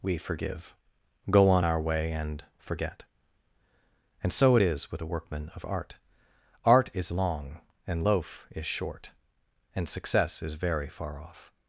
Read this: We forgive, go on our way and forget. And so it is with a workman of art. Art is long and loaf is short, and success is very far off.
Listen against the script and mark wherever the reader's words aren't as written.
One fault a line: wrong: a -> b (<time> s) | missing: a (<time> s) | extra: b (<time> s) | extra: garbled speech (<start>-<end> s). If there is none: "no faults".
no faults